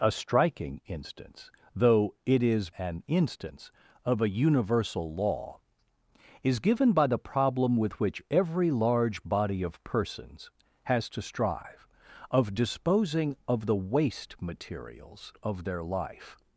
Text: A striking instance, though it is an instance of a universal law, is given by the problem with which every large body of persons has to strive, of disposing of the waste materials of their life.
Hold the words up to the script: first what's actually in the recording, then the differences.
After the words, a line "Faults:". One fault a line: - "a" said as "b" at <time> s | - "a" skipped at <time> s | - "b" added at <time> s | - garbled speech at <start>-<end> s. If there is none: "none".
A striking instance, though it is an instance of a universal law, is given by the problem with which every large body of persons has to strive, of disposing of the waste materials of their life.
Faults:
none